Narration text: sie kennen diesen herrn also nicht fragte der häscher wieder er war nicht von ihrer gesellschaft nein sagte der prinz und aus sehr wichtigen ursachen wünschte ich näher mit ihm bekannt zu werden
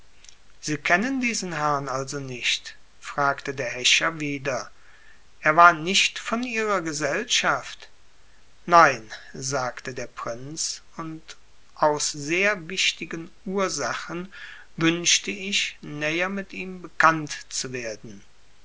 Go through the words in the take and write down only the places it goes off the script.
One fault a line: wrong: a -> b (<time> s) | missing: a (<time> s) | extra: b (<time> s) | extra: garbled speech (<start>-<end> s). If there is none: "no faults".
no faults